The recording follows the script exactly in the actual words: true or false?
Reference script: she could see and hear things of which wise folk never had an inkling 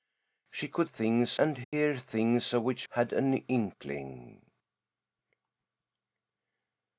false